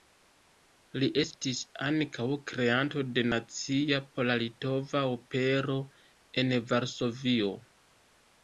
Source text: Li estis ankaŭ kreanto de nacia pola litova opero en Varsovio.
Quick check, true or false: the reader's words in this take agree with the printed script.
true